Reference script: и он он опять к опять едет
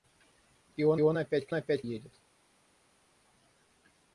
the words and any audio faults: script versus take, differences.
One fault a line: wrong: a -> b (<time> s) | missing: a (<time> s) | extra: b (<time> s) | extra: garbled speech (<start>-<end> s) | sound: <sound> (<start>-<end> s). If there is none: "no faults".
no faults